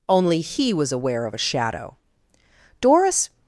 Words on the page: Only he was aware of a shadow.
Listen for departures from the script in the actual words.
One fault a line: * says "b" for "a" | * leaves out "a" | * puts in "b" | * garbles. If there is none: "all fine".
* puts in "Doris"